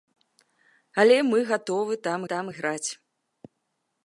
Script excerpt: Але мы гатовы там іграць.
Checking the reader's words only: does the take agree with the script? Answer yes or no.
no